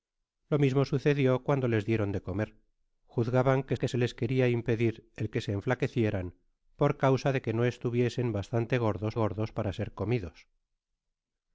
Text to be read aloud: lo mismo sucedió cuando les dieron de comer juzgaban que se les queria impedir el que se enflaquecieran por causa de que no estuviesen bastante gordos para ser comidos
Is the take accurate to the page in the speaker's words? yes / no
no